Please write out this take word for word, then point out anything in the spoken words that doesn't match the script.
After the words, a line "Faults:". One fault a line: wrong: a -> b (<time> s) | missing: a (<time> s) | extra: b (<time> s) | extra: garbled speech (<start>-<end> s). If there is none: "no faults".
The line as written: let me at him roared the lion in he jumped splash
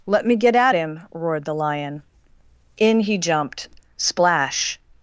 let me get at him roared the lion in he jumped splash
Faults:
extra: get (0.3 s)